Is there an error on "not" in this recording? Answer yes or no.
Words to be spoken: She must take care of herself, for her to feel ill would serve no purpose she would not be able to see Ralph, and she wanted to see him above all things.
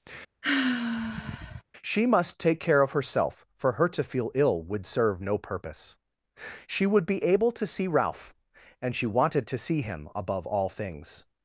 yes